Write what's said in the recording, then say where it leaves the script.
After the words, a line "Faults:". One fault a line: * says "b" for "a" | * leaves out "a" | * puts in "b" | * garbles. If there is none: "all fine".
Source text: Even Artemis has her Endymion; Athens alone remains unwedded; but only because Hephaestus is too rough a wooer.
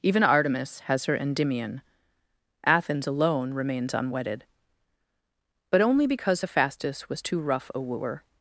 Even Artemis has her Endymion; Athens alone remains unwedded; but only because Hephaestus was too rough a wooer.
Faults:
* says "was" for "is"